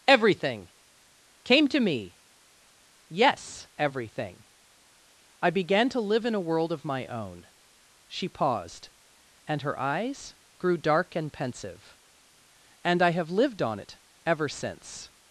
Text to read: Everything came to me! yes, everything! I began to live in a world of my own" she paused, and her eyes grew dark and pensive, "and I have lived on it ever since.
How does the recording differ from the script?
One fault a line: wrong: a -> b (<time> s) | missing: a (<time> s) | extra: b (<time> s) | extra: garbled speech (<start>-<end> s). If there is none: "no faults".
no faults